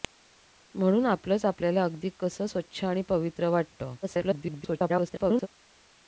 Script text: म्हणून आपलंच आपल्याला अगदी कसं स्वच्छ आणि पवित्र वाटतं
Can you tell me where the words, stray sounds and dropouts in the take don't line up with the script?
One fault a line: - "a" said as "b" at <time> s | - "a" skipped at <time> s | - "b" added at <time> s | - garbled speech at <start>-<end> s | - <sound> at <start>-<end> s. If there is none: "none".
- garbled speech at 4.0-5.5 s